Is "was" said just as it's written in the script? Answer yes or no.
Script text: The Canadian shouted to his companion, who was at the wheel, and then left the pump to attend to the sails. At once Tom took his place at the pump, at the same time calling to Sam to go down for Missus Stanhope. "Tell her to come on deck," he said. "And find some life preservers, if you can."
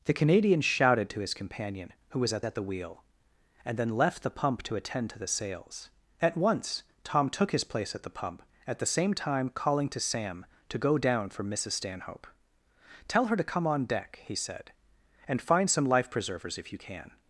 yes